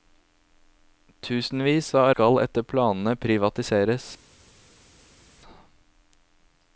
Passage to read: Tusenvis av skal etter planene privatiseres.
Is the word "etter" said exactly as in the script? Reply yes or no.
yes